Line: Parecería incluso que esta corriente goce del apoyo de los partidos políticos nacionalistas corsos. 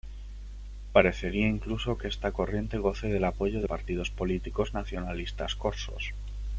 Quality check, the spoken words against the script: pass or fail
fail